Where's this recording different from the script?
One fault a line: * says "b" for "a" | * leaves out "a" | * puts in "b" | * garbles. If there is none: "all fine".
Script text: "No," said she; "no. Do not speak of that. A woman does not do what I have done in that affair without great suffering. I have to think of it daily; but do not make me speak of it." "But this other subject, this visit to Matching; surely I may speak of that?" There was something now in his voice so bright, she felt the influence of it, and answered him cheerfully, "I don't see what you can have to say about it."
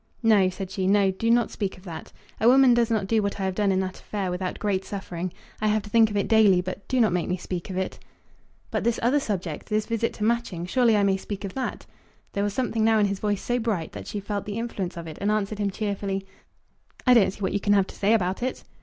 * puts in "that"